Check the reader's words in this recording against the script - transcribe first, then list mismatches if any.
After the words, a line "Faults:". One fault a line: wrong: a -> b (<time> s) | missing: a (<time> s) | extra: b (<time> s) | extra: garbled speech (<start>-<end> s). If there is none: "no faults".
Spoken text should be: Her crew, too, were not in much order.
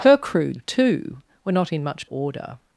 Her crew, too, were not in much order.
Faults:
no faults